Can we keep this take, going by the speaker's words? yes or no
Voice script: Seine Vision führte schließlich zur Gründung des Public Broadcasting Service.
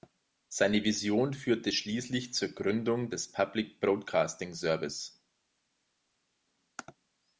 yes